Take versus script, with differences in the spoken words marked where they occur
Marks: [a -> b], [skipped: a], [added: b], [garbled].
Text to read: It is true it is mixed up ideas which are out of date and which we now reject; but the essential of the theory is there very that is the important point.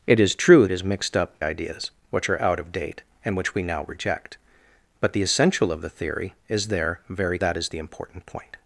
It is true it is mixed up ideas which are out of date and which we now reject; but the essential of the theory is there very that is the important point.